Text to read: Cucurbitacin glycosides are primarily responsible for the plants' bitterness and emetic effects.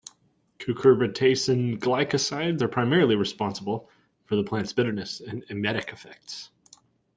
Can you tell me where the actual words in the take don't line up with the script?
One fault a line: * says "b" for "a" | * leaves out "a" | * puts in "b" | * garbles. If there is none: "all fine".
all fine